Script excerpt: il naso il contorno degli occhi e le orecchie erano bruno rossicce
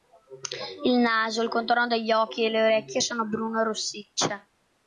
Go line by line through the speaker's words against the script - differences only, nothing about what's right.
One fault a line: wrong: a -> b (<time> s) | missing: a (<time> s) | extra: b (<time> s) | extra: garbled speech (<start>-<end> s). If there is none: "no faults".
wrong: erano -> sono (3.0 s)